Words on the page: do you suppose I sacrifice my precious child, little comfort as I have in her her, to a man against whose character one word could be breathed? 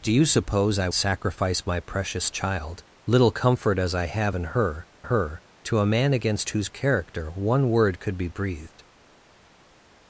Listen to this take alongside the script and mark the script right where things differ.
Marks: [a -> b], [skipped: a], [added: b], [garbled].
do you suppose I sacrifice my precious child, little comfort as I have in her her, to a man against whose character one word could be breathed?